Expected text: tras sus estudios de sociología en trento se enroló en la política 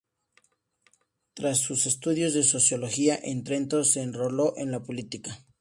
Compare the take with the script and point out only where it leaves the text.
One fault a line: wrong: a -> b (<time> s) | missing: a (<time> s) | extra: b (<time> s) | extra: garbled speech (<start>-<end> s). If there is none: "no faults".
no faults